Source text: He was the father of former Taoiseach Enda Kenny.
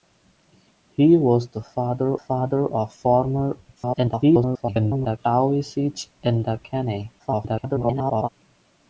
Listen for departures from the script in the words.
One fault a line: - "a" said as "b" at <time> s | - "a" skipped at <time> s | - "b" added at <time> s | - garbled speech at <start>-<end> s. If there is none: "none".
- "father" added at 2.1 s
- garbled speech at 3.8-5.2 s
- garbled speech at 7.2-8.3 s